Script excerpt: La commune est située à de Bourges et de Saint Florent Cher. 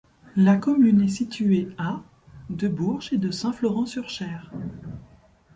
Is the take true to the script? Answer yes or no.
no